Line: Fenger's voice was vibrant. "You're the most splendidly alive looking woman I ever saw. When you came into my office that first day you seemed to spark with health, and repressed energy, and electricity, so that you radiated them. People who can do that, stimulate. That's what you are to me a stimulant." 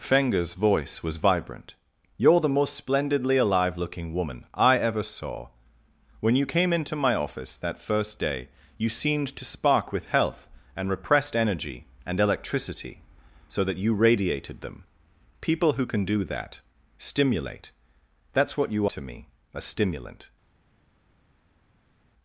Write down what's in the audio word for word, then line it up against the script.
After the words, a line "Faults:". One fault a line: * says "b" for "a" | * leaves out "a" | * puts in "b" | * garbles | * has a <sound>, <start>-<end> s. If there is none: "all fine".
Fenger's voice was vibrant. "You're the most splendidly alive looking woman I ever saw. When you came into my office that first day you seemed to spark with health, and repressed energy, and electricity, so that you radiated them. People who can do that, stimulate. That's what you to me a stimulant."
Faults:
* leaves out "are"